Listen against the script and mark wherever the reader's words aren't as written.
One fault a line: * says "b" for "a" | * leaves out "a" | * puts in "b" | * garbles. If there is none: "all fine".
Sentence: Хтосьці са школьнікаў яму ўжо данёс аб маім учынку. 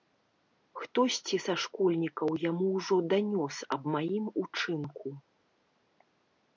all fine